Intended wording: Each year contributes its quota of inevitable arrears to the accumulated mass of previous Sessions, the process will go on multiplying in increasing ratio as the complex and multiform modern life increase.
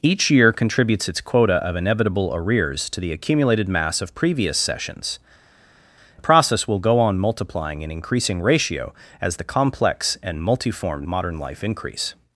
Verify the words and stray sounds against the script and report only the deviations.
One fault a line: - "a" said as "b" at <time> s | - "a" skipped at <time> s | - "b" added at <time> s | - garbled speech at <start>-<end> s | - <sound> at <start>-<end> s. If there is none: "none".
none